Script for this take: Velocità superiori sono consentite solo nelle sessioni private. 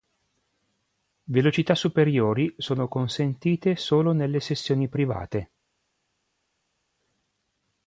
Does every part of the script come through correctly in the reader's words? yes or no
yes